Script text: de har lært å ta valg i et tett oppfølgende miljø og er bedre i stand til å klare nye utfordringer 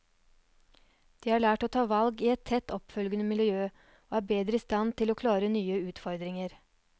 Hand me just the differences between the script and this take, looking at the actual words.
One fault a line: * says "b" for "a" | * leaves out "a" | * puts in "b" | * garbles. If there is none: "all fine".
all fine